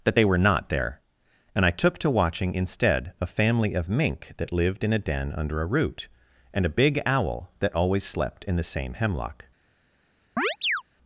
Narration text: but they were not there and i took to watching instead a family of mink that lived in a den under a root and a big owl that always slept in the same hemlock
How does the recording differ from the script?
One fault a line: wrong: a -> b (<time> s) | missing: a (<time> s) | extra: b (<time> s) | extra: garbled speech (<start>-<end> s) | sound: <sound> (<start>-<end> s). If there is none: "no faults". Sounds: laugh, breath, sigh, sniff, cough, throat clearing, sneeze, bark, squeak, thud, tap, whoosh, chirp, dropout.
wrong: but -> that (0.0 s)
sound: chirp (10.4-10.8 s)